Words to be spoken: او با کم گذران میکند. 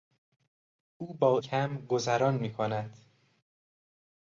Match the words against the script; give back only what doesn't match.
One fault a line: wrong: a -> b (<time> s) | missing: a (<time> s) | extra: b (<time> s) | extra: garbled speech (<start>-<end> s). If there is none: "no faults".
no faults